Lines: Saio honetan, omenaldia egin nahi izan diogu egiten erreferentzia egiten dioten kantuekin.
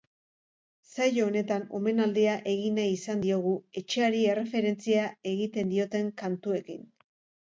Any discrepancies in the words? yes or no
yes